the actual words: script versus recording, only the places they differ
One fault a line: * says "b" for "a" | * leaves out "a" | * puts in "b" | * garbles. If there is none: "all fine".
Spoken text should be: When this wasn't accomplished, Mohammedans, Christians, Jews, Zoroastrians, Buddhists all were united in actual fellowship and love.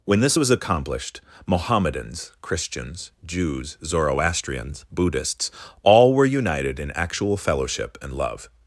* says "was" for "wasn't"